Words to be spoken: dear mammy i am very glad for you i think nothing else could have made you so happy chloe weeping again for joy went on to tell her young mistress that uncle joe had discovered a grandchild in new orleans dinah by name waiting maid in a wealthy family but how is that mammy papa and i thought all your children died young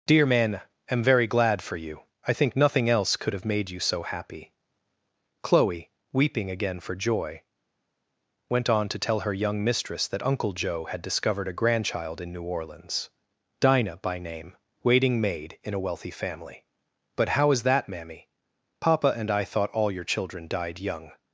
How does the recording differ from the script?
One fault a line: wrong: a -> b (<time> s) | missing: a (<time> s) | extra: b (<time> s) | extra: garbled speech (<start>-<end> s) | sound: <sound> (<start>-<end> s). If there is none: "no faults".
wrong: mammy i -> man (0.2 s)